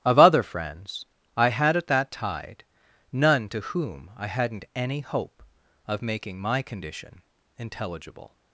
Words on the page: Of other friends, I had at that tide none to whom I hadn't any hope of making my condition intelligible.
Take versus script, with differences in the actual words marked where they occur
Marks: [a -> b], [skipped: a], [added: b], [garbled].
Of other friends, I had at that tide none to whom I hadn't any hope of making my condition intelligible.